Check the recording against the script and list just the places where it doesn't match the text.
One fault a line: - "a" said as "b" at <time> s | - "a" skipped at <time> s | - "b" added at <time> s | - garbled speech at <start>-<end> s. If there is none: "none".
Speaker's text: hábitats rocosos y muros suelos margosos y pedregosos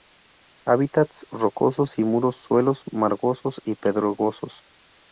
none